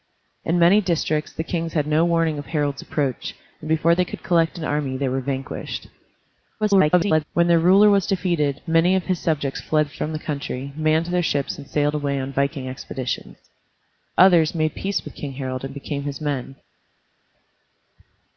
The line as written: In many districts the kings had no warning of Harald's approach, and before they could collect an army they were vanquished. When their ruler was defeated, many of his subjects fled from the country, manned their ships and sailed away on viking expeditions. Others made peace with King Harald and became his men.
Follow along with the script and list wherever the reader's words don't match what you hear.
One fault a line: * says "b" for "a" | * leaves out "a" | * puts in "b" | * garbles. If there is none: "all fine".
* garbles